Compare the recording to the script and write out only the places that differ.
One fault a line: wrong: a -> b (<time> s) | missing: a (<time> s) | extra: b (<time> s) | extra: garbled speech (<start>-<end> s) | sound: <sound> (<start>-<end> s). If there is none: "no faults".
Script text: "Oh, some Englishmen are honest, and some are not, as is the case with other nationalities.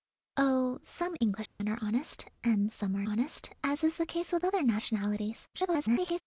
sound: dropout (1.5-1.6 s)
wrong: not -> honest (3.0 s)
extra: garbled speech (5.5-6.2 s)